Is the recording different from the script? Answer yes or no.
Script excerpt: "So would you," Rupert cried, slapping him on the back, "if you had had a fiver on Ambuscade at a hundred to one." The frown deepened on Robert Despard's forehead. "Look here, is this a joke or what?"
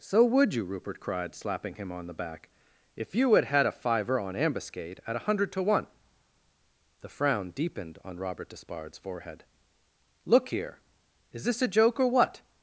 no